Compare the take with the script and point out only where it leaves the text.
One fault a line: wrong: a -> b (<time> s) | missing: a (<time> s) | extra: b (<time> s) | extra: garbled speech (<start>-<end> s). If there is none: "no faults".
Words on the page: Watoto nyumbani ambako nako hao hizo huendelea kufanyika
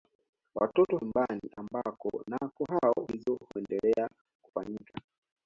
no faults